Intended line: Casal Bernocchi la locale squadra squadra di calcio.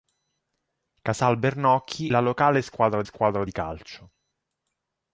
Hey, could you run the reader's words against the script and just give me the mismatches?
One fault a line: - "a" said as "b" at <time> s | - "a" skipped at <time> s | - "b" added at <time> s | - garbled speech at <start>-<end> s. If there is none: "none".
none